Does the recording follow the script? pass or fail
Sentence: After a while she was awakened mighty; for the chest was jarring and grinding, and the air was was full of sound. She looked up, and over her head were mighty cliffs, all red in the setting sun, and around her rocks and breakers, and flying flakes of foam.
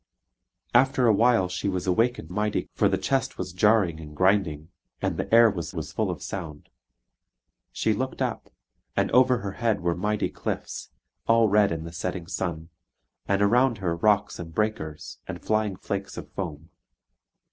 pass